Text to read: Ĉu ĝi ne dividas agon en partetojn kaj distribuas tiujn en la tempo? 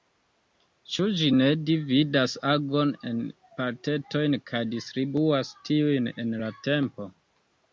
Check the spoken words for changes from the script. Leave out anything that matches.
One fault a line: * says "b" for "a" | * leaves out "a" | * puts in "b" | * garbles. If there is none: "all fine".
all fine